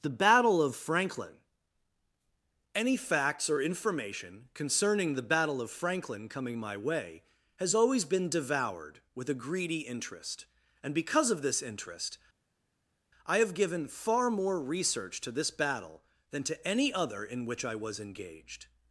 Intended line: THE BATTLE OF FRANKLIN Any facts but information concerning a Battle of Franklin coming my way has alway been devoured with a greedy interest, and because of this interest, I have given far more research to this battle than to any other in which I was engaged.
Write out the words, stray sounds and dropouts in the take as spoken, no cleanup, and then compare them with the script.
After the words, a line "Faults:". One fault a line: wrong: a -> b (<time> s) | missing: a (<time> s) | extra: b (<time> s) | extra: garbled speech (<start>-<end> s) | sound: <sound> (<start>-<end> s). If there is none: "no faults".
THE BATTLE OF FRANKLIN Any facts or information concerning the Battle of Franklin coming my way has always been devoured with a greedy interest, and because of this interest, I have given far more research to this battle than to any other in which I was engaged.
Faults:
wrong: but -> or (3.5 s)
wrong: a -> the (5.1 s)
wrong: alway -> always (7.7 s)